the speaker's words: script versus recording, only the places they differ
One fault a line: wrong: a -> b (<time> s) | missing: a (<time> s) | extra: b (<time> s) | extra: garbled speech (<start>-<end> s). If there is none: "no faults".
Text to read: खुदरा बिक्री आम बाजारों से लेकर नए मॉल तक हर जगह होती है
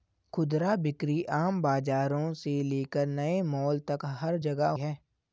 missing: होती (4.7 s)